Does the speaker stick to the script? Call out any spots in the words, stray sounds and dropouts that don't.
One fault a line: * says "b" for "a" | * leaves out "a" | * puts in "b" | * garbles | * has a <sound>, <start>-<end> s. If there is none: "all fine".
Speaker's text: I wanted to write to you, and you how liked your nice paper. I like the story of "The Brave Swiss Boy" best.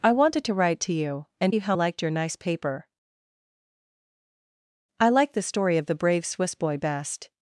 all fine